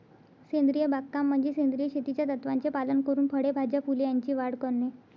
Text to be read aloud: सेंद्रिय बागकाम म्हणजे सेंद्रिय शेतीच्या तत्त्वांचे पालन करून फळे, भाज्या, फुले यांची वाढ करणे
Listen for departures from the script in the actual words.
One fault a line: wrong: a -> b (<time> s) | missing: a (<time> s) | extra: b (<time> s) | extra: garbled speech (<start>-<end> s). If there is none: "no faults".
no faults